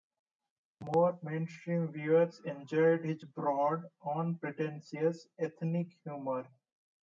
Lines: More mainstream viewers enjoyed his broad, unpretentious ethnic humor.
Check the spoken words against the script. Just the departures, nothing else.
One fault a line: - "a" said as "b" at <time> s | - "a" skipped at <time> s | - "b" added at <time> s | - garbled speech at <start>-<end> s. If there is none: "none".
none